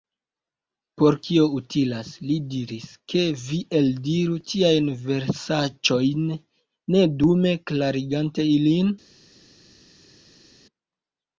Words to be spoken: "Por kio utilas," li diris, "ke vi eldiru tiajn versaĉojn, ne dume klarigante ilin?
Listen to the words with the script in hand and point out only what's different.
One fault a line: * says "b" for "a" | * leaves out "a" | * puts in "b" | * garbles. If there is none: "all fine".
all fine